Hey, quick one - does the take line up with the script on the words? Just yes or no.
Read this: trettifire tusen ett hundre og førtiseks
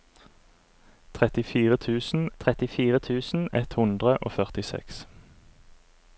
no